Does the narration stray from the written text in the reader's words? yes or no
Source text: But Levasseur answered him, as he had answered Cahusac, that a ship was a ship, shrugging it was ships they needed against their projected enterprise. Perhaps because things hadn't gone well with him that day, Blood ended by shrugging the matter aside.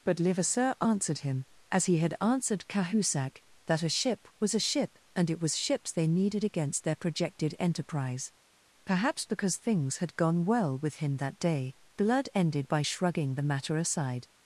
yes